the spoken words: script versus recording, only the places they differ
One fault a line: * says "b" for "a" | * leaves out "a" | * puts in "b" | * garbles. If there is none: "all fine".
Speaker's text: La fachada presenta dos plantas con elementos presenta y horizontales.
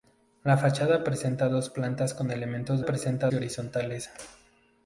all fine